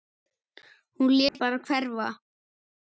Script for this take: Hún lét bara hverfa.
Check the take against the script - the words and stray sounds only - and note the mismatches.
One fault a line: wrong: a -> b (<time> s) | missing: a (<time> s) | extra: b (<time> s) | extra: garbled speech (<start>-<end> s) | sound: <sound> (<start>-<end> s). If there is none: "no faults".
sound: dropout (1.3-1.3 s)